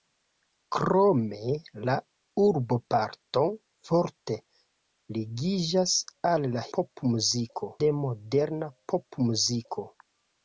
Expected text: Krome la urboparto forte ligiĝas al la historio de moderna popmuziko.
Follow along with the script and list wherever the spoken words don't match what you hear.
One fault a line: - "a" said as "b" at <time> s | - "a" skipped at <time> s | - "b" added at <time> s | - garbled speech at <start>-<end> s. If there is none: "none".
- "historio" said as "popmuziko" at 6.8 s